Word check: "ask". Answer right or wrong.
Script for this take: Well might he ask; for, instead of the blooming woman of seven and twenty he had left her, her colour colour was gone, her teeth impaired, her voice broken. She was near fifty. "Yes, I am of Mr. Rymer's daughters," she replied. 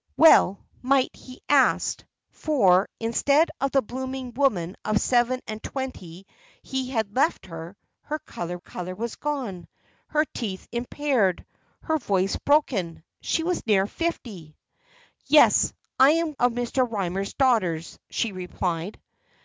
right